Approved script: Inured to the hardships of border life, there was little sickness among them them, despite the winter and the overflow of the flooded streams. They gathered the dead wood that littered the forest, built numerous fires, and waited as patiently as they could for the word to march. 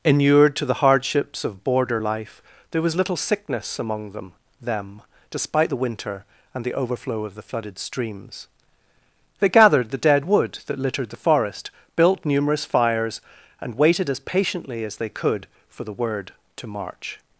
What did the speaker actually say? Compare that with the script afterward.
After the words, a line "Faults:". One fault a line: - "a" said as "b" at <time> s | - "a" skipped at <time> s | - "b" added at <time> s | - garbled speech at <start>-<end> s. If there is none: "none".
Inured to the hardships of border life, there was little sickness among them them, despite the winter and the overflow of the flooded streams. They gathered the dead wood that littered the forest, built numerous fires, and waited as patiently as they could for the word to march.
Faults:
none